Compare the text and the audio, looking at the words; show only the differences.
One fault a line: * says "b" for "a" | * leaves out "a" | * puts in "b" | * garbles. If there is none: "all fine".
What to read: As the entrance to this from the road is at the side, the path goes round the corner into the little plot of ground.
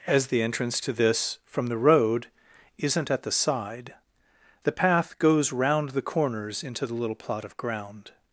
* says "isn't" for "is"
* says "corners" for "corner"